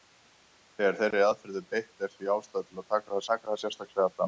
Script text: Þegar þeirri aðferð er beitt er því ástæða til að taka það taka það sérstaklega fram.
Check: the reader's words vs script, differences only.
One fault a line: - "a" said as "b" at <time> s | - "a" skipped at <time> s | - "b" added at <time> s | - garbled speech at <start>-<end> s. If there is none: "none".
none